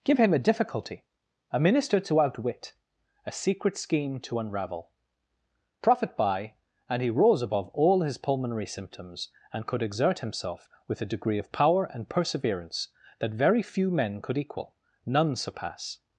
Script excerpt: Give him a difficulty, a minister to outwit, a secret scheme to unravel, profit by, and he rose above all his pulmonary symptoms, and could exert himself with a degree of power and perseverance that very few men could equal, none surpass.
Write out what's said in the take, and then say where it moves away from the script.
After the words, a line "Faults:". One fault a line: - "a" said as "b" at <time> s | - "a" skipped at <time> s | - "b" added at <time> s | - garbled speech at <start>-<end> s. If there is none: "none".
Give him a difficulty, a minister to outwit, a secret scheme to unravel, profit by, and he rose above all his pulmonary symptoms, and could exert himself with a degree of power and perseverance that very few men could equal, none surpass.
Faults:
none